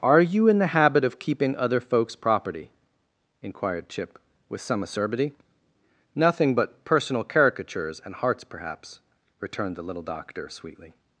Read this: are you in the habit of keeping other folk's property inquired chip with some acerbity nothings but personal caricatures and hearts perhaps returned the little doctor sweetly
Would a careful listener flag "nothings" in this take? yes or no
yes